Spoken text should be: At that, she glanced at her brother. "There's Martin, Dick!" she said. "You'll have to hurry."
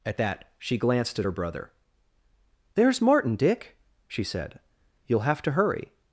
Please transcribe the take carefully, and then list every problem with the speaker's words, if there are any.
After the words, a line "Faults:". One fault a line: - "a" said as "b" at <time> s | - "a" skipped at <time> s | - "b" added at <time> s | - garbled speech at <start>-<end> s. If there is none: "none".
At that, she glanced at her brother. "There's Martin, Dick!" she said. "You'll have to hurry."
Faults:
none